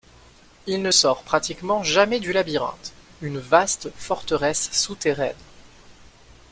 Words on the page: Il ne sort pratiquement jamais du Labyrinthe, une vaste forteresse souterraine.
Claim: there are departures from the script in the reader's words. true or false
false